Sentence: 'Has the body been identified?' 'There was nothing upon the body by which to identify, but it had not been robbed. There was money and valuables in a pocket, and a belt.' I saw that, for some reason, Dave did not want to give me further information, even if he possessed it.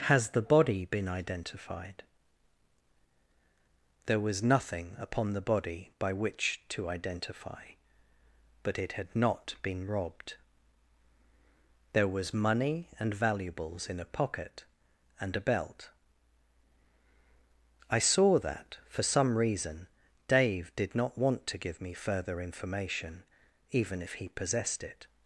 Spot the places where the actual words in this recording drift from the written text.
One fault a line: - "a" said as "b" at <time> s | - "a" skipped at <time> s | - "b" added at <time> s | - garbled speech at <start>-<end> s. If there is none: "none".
none